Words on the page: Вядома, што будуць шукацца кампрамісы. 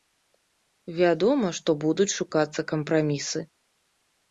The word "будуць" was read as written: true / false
true